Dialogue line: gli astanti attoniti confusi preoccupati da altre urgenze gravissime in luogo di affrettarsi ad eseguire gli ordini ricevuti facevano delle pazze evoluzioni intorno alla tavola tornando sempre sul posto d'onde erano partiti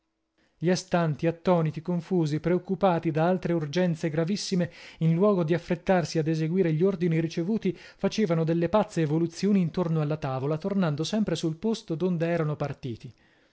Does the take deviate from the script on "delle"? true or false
false